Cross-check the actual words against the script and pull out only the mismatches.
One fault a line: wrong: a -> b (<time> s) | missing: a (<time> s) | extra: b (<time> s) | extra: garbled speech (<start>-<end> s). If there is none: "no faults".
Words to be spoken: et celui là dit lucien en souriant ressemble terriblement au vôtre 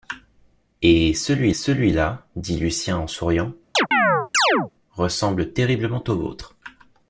extra: celui (1.5 s)